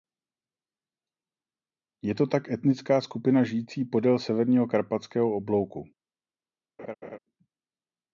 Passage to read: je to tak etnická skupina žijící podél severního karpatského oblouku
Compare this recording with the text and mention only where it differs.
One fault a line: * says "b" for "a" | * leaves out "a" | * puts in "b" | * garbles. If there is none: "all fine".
all fine